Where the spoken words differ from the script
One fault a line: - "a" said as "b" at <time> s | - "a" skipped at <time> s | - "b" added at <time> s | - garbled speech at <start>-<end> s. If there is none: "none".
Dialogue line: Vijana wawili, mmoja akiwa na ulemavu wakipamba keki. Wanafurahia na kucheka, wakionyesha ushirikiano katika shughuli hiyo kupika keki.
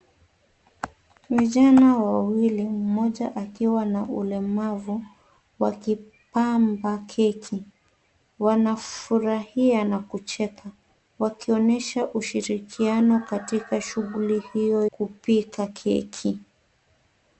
none